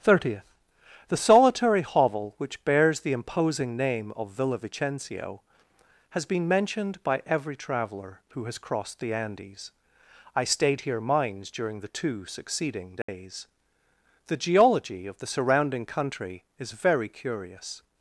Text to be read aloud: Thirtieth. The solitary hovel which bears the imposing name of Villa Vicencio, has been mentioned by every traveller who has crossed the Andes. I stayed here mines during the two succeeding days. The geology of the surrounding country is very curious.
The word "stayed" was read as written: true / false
true